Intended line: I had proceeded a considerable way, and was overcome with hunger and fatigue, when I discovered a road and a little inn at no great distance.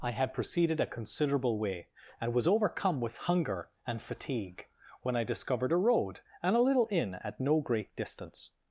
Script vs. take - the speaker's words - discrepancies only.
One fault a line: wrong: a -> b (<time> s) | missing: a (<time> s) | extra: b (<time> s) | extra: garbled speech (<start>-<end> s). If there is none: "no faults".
no faults